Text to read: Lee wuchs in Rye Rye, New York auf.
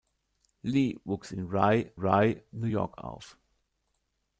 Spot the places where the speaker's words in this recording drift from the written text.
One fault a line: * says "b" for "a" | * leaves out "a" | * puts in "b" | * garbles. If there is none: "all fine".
all fine